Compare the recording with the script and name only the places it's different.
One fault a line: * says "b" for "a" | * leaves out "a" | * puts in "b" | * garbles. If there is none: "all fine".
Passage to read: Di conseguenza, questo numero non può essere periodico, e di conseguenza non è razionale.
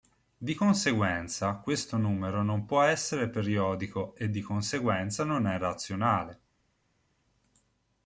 all fine